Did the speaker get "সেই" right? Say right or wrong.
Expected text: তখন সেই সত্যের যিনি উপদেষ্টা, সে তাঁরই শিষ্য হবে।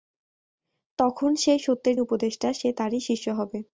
right